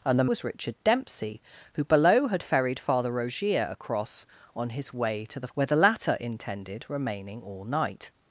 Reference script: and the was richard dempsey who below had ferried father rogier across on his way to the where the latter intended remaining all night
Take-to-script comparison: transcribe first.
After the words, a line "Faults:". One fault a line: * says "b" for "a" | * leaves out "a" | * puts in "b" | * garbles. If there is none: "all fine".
and the was richard dempsey who below had ferried father rogier across on his way to the where the latter intended remaining all night
Faults:
all fine